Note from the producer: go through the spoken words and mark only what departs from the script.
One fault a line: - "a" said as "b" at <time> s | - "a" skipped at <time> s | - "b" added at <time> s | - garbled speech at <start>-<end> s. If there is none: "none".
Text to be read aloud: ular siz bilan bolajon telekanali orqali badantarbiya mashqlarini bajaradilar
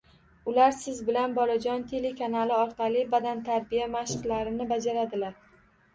none